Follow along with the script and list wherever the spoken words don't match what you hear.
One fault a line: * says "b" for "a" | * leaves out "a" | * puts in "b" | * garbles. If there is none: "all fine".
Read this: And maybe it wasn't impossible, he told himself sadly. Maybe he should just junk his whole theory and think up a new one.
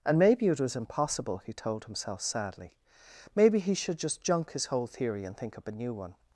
* says "was" for "wasn't"